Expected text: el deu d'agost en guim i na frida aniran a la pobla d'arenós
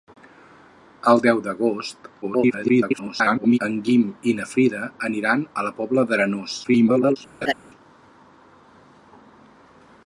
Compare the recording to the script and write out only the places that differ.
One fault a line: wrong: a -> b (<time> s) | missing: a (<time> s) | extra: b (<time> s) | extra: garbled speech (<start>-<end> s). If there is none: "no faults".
extra: garbled speech (2.2-3.6 s)
extra: garbled speech (6.6-7.2 s)